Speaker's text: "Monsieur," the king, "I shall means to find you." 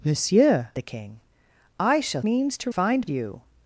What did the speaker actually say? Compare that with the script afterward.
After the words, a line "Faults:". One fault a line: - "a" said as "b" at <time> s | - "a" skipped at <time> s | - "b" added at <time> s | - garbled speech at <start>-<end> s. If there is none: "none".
"Monsieur," the king, "I shall means to find you."
Faults:
none